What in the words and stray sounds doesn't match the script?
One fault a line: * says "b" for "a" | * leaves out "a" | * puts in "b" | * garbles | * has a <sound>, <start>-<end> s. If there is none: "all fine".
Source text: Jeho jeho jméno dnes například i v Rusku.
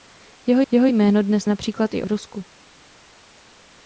all fine